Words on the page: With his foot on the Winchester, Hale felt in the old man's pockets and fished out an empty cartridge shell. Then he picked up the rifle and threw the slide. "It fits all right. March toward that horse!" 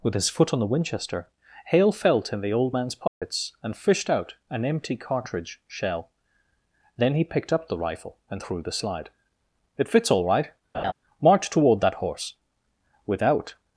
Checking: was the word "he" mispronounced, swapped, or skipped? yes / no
no